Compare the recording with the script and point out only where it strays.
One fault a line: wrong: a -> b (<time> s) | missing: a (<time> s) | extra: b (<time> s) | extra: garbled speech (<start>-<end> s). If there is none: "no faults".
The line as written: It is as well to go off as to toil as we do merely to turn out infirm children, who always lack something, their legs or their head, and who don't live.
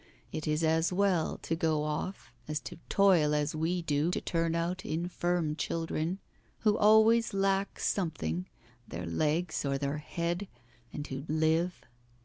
missing: merely (4.1 s)
missing: don't (11.3 s)